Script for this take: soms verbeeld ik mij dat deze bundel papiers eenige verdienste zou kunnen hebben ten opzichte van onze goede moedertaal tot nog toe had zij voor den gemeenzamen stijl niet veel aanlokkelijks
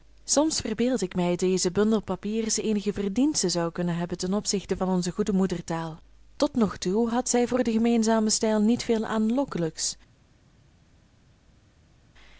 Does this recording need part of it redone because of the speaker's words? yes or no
yes